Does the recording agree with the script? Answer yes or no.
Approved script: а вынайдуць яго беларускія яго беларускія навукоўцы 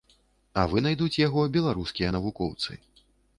no